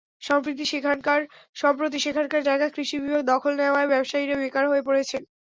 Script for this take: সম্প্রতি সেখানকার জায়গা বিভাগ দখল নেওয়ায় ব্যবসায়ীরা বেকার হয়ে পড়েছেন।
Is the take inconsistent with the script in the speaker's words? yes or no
yes